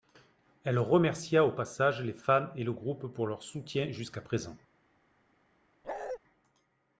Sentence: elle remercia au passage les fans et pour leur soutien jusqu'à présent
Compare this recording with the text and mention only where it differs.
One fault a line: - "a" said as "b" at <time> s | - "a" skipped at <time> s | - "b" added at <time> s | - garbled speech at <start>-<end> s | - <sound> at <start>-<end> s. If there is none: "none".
- "le groupe" added at 2.6 s
- bark at 5.8-6.2 s